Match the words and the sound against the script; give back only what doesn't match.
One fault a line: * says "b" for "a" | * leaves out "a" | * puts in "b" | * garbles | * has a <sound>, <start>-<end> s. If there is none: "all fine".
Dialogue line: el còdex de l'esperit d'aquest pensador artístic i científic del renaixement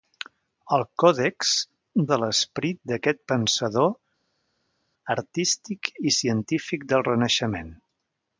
all fine